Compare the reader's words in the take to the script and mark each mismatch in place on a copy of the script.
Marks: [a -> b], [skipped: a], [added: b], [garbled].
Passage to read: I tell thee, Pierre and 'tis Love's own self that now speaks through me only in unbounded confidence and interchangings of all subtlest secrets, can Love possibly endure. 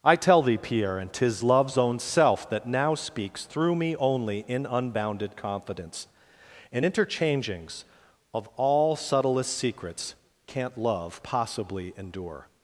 I tell thee, Pierre and 'tis Love's own self that now speaks through me only in unbounded confidence and interchangings of all subtlest secrets, [can -> can't] Love possibly endure.